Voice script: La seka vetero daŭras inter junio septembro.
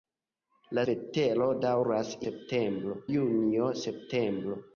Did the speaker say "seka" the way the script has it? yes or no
no